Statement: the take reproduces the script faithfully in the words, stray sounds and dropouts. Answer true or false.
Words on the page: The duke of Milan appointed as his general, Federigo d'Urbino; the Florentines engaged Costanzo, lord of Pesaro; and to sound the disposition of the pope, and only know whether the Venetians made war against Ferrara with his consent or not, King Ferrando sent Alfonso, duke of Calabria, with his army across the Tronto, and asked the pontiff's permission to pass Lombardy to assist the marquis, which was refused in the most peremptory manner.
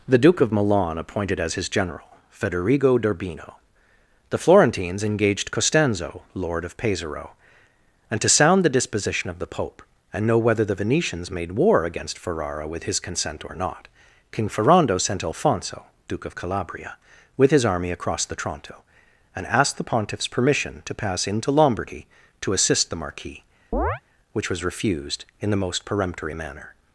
false